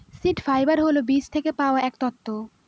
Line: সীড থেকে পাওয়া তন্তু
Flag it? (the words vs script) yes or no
yes